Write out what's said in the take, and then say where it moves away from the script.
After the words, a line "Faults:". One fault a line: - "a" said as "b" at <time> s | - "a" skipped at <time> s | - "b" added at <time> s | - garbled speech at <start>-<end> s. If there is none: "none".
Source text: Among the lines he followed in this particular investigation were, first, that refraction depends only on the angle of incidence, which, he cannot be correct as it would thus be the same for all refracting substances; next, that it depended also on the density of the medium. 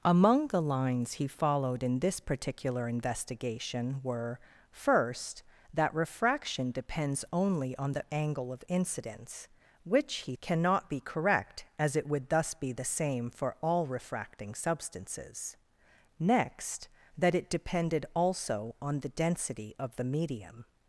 Among the lines he followed in this particular investigation were, first, that refraction depends only on the angle of incidence, which, he cannot be correct as it would thus be the same for all refracting substances; next, that it depended also on the density of the medium.
Faults:
none